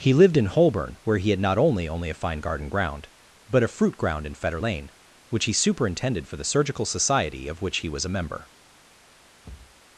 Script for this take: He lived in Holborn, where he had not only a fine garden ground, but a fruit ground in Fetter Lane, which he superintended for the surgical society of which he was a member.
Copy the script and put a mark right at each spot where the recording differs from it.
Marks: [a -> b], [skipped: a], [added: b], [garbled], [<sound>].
He lived in Holborn, where he had not only [added: only] a fine garden ground, but a fruit ground in Fetter Lane, which he superintended for the surgical society of which he was a member. [thud]